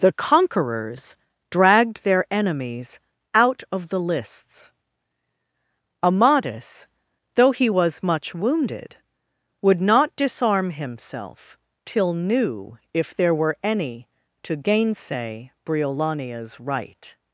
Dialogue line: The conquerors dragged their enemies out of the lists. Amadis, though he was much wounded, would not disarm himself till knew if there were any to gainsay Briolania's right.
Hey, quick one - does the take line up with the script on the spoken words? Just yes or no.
yes